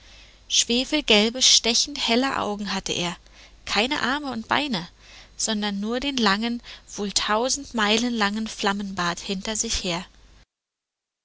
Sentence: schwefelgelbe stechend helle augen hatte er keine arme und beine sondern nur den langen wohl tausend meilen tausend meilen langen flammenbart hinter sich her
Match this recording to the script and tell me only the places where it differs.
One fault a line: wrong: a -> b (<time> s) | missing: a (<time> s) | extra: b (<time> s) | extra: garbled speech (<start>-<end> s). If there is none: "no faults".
missing: tausend meilen (8.2 s)